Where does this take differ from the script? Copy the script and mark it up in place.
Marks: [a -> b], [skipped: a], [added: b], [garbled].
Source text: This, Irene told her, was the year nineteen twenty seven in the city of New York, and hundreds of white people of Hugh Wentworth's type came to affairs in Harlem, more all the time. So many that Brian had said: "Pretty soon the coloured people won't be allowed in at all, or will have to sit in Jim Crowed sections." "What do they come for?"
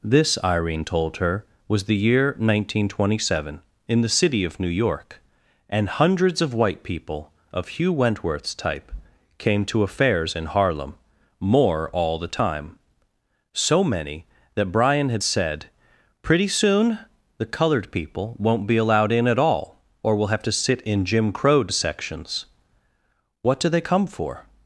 This, Irene told her, was the year nineteen twenty seven in the city of New York, and hundreds of white people of Hugh Wentworth's type came to affairs in Harlem, more all the time. So many that Brian had said: "Pretty soon the coloured people won't be allowed in at all, or will have to sit in Jim Crowed sections." "What do they come for?"